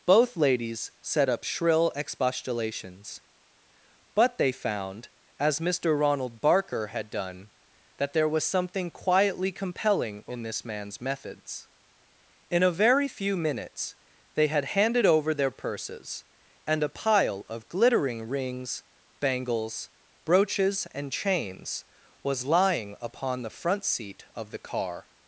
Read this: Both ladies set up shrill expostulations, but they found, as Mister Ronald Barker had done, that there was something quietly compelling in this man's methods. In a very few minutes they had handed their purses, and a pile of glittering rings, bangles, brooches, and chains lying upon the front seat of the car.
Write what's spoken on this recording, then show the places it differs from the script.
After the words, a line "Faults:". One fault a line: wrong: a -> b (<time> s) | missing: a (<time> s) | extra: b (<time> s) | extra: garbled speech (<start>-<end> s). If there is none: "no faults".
Both ladies set up shrill expostulations, but they found, as Mister Ronald Barker had done, that there was something quietly compelling in this man's methods. In a very few minutes they had handed over their purses, and a pile of glittering rings, bangles, brooches, and chains was lying upon the front seat of the car.
Faults:
extra: over (15.0 s)
extra: was (22.2 s)